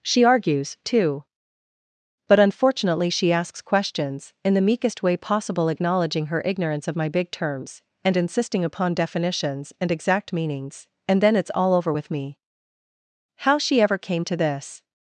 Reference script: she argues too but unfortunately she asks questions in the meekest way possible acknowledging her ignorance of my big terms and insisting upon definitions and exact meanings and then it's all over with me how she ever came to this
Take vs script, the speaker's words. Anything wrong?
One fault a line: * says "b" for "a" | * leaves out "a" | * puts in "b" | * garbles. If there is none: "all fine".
all fine